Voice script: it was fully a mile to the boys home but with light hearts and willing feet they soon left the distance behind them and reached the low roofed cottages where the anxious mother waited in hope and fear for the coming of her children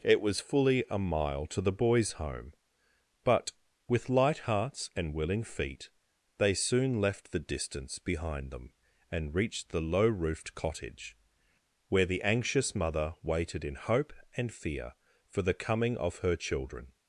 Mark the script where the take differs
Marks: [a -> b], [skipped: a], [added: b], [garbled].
it was fully a mile to the boys home but with light hearts and willing feet they soon left the distance behind them and reached the low roofed [cottages -> cottage] where the anxious mother waited in hope and fear for the coming of her children